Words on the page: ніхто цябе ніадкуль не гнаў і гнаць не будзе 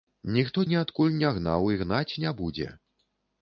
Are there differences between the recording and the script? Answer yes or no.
yes